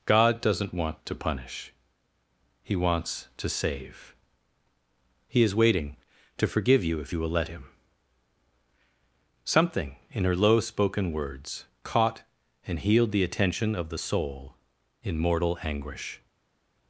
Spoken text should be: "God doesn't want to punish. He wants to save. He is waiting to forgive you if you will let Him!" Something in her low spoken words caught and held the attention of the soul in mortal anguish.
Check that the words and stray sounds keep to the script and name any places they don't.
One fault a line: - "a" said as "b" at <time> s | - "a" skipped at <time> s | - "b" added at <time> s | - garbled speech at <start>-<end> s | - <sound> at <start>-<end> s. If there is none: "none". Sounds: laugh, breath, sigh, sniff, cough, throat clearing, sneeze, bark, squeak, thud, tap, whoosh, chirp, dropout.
- "held" said as "healed" at 12.8 s